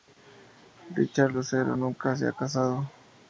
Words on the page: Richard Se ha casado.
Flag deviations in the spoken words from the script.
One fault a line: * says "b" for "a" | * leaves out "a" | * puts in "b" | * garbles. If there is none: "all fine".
* puts in "Lucero nunca"